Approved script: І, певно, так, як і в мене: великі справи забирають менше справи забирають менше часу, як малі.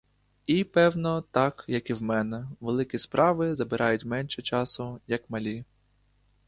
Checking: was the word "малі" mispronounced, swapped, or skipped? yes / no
no